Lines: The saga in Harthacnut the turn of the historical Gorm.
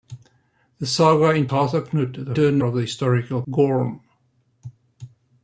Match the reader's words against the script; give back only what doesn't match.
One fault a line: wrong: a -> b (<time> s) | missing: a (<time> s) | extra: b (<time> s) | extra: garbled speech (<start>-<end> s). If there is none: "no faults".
no faults